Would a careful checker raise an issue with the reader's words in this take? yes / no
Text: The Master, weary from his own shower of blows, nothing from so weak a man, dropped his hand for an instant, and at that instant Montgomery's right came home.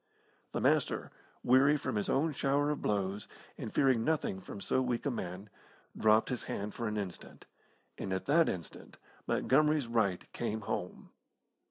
yes